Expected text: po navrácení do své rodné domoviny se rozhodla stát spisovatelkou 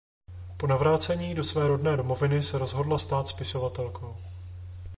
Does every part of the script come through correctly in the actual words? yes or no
yes